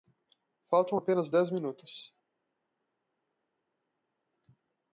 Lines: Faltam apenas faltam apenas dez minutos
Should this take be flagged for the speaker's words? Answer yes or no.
yes